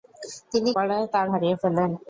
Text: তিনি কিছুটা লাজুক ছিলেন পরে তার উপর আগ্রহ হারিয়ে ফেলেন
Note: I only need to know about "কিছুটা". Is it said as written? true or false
false